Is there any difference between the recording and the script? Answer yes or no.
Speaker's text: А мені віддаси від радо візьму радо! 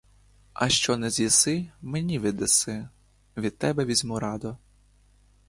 yes